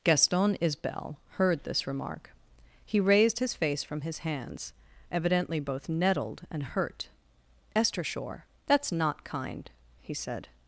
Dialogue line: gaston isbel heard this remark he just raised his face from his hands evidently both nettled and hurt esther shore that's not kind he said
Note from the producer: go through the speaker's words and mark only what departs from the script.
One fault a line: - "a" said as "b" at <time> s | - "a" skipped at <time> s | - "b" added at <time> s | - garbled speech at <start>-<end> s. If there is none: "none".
- "just" skipped at 3.0 s